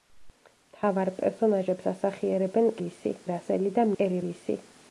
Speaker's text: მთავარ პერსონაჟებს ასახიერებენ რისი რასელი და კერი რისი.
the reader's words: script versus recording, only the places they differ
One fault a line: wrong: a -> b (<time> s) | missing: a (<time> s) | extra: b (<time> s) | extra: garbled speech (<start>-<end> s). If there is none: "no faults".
no faults